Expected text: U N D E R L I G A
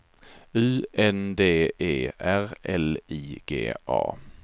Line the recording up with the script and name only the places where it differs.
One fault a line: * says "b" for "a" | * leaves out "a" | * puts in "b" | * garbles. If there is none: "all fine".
all fine